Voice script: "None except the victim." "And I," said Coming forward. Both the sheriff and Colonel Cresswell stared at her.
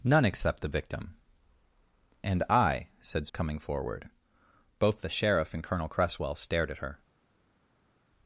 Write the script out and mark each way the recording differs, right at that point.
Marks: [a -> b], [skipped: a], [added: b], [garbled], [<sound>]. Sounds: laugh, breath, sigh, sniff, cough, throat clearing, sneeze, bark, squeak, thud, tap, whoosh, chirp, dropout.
"None except the victim." "And I," said Coming forward. Both the sheriff and Colonel Cresswell stared at her.